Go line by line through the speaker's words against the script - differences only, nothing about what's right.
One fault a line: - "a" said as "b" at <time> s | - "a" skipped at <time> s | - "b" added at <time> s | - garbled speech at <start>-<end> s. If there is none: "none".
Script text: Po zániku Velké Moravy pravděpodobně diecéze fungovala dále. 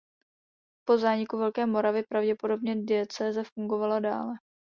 none